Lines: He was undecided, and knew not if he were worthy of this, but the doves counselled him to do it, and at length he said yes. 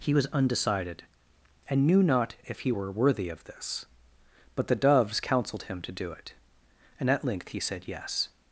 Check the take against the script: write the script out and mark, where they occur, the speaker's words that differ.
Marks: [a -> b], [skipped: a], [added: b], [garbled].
He was undecided, and knew not if he were worthy of this, but the doves counselled him to do it, and at length he said yes.